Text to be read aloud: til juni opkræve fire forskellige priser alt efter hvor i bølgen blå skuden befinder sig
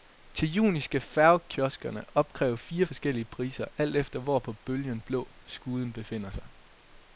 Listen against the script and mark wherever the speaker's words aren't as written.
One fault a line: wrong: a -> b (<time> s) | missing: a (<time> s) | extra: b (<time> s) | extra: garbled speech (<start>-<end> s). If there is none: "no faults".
extra: skal færgekioskerne (0.8 s)
wrong: i -> på (4.4 s)